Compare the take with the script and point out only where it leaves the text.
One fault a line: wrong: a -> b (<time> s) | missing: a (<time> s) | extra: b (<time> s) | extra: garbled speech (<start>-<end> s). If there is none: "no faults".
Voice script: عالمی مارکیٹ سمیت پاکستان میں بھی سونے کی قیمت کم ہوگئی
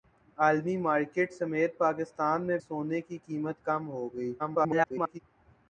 missing: بھی (2.6 s)
extra: garbled speech (4.4-5.2 s)